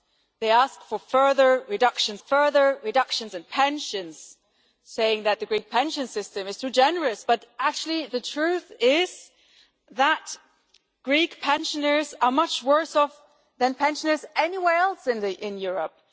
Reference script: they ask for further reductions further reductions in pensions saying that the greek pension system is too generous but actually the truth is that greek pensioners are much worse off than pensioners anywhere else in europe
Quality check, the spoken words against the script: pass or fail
pass